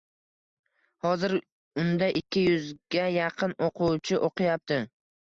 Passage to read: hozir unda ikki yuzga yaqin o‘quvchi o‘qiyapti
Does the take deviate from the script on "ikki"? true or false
false